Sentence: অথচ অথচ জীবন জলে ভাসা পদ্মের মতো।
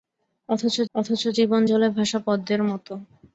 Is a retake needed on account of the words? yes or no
no